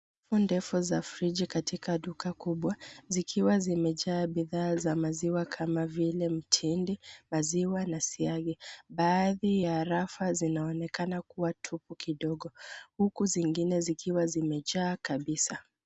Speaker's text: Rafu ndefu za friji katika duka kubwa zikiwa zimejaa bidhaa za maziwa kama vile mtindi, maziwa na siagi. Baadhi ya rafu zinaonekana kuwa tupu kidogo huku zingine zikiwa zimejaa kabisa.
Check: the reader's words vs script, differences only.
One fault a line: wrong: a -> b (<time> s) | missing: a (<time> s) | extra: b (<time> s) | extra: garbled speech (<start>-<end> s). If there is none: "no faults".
no faults